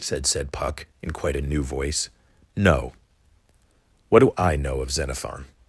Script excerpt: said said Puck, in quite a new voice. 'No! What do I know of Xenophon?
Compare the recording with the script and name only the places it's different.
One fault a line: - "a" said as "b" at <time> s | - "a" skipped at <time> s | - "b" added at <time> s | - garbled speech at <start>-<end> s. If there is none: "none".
none